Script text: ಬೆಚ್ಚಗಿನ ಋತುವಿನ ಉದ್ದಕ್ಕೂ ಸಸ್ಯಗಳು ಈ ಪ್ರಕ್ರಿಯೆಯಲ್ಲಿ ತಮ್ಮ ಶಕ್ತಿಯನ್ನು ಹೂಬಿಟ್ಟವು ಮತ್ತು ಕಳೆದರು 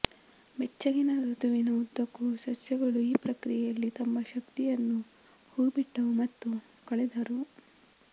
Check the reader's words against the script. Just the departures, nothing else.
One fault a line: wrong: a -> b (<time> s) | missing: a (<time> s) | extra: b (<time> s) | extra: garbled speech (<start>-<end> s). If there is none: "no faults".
no faults